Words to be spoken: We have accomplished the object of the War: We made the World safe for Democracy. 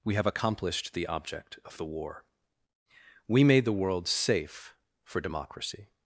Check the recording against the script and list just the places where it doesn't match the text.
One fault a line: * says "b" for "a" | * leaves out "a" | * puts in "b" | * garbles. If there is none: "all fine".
all fine